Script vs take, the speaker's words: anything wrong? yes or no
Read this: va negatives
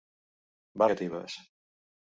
no